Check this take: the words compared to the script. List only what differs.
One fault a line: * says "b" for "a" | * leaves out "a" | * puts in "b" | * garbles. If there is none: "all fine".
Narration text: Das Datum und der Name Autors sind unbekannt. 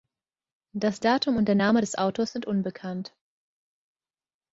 * puts in "des"